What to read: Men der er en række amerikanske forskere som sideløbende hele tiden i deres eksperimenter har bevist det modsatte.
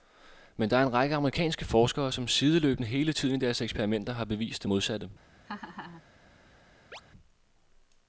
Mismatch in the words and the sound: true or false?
true